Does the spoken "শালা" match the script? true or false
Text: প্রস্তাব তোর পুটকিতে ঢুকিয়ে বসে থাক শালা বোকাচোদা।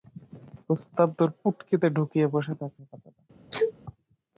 false